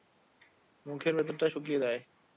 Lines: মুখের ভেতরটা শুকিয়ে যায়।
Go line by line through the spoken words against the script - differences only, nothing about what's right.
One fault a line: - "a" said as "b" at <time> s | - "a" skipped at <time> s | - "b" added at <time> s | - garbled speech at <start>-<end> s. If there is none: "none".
none